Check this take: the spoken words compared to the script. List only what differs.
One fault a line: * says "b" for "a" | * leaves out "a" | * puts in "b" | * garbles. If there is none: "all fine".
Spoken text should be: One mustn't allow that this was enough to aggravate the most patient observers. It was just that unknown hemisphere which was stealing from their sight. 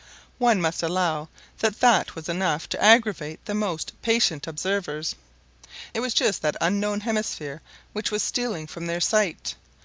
* says "must" for "mustn't"
* says "that" for "this"